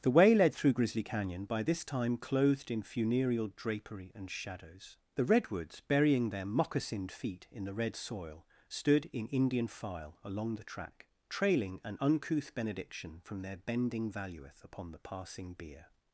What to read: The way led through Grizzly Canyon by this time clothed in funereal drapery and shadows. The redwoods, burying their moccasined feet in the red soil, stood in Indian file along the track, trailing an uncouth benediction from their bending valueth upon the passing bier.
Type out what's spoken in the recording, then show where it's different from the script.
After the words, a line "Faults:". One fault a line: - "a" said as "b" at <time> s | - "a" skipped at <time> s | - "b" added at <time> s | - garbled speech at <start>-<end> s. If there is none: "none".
The way led through Grizzly Canyon by this time clothed in funereal drapery and shadows. The redwoods, burying their moccasined feet in the red soil, stood in Indian file along the track, trailing an uncouth benediction from their bending valueth upon the passing bier.
Faults:
none